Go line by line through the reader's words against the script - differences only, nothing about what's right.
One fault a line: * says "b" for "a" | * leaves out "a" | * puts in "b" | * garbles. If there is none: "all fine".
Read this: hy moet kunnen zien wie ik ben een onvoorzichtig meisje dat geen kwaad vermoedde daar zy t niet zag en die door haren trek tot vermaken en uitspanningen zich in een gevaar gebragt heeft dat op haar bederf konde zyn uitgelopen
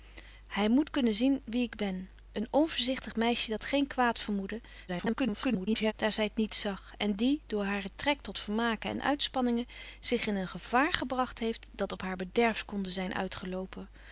* garbles